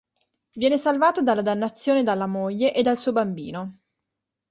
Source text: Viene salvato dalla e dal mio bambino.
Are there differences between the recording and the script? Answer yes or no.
yes